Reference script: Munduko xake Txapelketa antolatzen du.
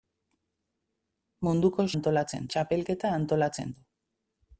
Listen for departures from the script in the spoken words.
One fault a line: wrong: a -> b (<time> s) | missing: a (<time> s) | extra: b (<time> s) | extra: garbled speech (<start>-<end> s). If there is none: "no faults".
wrong: xake -> antolatzen (2.0 s)